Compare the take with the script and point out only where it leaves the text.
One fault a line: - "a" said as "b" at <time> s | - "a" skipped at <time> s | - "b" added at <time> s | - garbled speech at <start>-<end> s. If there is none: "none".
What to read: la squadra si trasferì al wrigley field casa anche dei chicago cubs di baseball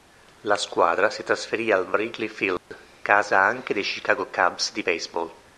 none